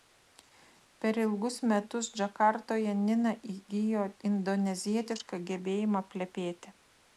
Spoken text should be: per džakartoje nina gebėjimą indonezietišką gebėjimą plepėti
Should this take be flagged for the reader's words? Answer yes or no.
yes